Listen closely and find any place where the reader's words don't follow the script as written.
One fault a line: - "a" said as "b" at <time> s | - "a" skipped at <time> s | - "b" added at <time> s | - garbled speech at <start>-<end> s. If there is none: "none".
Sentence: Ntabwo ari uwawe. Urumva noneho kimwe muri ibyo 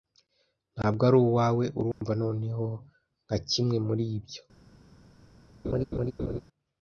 - "nka" added at 3.2 s